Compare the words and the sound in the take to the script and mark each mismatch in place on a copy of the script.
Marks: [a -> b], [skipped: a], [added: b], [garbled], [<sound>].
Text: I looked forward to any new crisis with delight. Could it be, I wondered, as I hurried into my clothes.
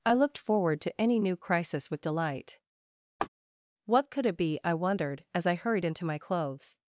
I looked forward to any new crisis with delight. [laugh] [added: What] Could it be, I wondered, as I hurried into my clothes.